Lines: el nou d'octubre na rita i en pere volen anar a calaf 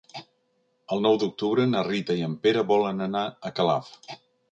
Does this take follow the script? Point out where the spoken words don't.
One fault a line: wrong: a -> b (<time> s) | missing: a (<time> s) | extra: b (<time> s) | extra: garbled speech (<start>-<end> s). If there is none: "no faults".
no faults